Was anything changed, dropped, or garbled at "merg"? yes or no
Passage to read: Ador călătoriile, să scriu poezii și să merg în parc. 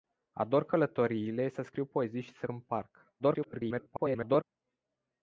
yes